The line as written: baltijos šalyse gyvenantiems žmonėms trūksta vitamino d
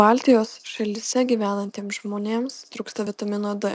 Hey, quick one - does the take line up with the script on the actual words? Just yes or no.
yes